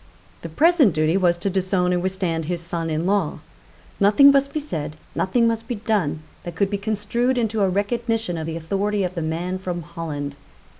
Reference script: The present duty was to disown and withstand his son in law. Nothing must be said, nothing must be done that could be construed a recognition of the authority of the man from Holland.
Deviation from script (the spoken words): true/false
true